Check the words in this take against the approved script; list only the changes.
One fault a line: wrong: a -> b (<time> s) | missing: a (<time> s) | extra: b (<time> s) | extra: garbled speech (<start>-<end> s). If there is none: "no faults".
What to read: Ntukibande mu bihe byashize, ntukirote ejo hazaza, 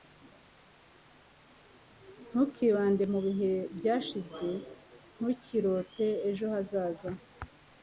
no faults